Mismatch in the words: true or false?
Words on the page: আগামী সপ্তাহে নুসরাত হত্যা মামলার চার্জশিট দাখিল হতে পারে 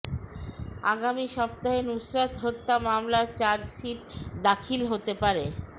false